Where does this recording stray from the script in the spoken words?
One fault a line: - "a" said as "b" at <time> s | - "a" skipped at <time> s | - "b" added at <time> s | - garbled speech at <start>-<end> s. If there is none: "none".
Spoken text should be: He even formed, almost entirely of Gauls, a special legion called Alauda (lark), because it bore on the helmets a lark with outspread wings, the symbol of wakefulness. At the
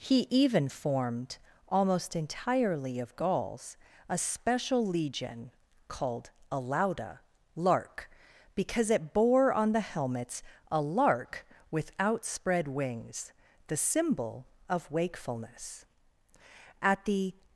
none